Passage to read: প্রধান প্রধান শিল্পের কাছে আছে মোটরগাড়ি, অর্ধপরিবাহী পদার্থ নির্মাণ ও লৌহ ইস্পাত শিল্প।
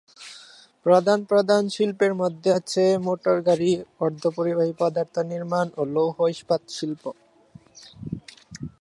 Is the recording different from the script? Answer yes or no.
yes